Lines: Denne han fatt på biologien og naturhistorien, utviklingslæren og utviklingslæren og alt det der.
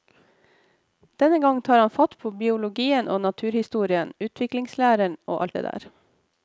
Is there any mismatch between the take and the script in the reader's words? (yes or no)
yes